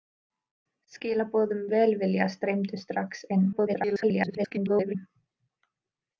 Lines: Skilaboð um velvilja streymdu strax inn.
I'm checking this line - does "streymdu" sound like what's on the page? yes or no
yes